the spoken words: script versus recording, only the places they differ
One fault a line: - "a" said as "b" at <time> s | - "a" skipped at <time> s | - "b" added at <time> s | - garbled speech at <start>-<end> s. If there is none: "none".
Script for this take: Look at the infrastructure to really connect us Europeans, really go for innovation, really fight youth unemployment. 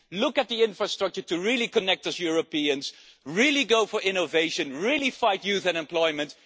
none